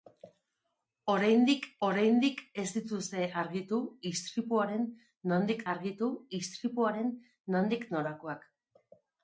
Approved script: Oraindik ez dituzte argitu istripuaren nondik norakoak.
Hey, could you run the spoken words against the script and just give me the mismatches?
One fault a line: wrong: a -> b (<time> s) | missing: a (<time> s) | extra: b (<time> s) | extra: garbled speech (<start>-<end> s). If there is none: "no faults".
extra: oraindik (1.9 s)
extra: argitu istripuaren nondik (5.7 s)